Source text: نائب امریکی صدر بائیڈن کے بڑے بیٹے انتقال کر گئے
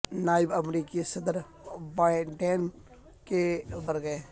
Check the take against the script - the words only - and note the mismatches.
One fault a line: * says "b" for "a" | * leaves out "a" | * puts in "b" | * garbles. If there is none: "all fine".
* leaves out "بڑے بیٹے انتقال"